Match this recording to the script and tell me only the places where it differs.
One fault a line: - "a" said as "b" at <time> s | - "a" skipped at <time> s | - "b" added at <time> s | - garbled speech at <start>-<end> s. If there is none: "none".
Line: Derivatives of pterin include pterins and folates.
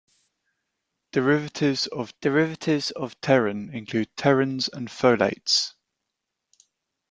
- "derivatives of" added at 2.2 s